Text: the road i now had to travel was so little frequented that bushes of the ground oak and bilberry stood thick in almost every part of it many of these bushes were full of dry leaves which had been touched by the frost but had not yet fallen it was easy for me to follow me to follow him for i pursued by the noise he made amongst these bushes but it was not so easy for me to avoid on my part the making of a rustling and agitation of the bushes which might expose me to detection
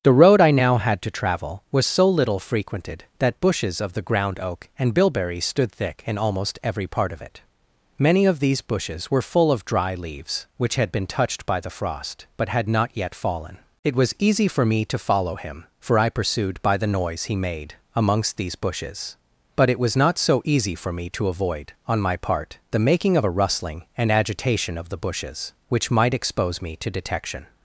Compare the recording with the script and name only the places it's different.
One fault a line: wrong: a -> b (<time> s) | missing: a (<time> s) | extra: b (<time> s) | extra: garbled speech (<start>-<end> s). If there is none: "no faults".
missing: me to follow (15.3 s)